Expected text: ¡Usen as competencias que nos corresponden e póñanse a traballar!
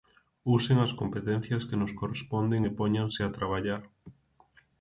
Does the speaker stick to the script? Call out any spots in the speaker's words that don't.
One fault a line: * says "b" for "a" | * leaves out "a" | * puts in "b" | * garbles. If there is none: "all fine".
all fine